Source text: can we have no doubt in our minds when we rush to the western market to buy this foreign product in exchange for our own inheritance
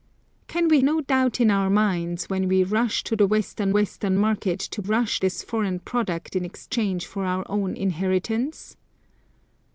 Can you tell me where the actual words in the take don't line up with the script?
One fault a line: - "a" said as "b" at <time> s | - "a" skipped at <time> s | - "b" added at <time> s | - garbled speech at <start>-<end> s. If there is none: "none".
- "have" skipped at 0.8 s
- "western" added at 3.7 s
- "buy" said as "rush" at 4.8 s